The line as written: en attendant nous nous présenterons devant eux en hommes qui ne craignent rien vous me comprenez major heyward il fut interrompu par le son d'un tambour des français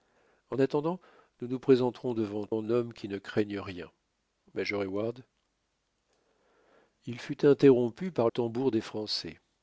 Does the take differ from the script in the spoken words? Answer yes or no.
yes